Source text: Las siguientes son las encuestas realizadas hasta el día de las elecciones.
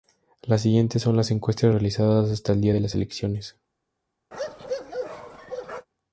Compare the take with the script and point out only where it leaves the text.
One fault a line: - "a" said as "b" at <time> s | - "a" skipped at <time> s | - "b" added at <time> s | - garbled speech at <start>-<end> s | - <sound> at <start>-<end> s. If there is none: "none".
- bark at 4.3-5.9 s